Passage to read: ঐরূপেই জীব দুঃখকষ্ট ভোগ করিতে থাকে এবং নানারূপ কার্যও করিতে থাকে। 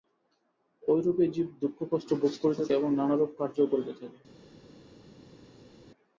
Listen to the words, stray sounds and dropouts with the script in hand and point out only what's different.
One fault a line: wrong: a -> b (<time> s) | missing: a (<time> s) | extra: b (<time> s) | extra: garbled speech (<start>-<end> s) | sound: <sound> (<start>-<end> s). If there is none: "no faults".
missing: থাকে (2.6 s)